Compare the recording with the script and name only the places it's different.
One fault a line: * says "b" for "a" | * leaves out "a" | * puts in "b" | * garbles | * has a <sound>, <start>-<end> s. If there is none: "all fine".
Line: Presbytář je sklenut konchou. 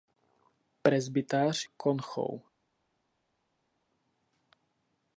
* leaves out "je sklenut"